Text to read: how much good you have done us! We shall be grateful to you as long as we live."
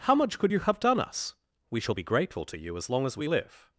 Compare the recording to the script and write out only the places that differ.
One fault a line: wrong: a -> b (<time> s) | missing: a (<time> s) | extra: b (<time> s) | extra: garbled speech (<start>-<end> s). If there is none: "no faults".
wrong: good -> could (0.4 s)